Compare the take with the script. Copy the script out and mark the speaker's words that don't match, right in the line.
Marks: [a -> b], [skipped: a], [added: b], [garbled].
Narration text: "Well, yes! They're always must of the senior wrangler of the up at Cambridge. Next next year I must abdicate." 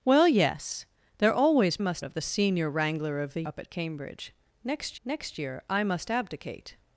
"Well, yes! They're always must of the senior wrangler of the up at Cambridge. Next next year I must abdicate."